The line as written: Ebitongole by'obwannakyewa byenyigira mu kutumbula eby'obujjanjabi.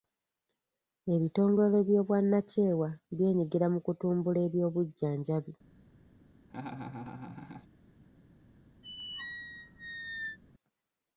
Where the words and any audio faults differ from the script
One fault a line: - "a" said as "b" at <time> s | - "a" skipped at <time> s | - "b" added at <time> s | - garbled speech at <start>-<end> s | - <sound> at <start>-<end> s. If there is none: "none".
- laugh at 6.5-7.7 s
- squeak at 8.8-10.4 s